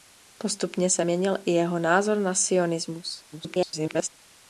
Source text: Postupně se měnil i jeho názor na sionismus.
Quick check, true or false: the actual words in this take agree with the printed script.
false